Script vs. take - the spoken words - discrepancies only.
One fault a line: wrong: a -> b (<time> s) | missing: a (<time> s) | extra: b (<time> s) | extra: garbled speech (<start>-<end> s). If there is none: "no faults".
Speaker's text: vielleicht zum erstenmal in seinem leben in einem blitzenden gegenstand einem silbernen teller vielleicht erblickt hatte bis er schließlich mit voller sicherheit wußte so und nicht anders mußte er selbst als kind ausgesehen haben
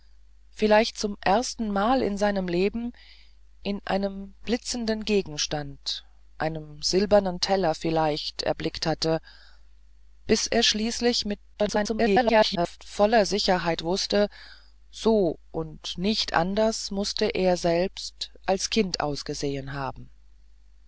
extra: garbled speech (11.5-12.8 s)